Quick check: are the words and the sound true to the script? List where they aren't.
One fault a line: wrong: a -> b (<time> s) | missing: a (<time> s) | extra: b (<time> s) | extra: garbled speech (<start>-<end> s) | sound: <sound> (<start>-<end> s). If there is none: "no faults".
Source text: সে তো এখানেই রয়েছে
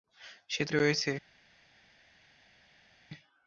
missing: এখানেই (0.7 s)